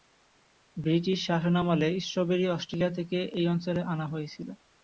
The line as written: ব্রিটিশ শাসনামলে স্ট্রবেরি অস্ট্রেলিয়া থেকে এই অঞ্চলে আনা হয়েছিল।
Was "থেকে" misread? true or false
false